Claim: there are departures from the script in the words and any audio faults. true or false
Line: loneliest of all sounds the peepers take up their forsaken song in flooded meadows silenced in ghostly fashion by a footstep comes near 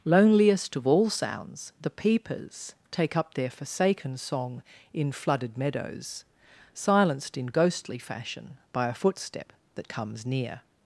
true